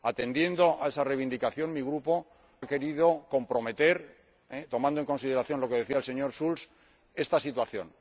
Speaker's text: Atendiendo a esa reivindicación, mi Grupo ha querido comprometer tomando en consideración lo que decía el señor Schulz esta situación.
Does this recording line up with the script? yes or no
yes